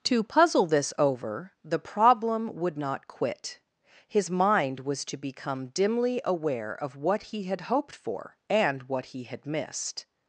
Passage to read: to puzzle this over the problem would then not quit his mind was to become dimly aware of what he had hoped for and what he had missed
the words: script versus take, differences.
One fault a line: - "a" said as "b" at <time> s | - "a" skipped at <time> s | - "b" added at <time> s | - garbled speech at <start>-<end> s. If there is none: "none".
- "then" skipped at 2.8 s